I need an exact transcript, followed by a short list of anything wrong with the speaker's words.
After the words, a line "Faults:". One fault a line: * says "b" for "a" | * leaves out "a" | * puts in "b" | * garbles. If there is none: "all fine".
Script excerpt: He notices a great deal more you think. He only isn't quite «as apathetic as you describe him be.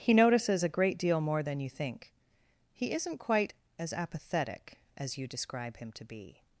He notices a great deal more than you think. He isn't quite «as apathetic as you describe him to be.
Faults:
* puts in "than"
* leaves out "only"
* puts in "to"